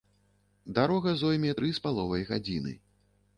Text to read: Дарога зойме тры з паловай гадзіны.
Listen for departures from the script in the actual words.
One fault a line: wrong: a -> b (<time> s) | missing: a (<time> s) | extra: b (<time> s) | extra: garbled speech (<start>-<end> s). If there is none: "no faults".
no faults